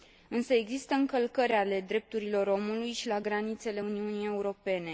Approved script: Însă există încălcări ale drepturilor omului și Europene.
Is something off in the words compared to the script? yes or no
yes